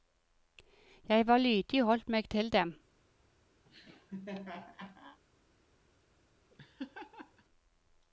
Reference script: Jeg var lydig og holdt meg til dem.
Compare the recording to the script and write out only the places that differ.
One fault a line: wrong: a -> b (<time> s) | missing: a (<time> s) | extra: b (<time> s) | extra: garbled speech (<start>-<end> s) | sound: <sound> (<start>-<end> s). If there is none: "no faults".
sound: laugh (3.6-5.2 s)
sound: laugh (6.5-7.4 s)